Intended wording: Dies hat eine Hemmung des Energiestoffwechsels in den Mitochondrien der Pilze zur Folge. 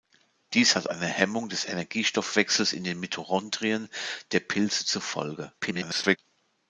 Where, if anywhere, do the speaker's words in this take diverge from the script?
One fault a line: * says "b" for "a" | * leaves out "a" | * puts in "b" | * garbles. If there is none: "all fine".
* garbles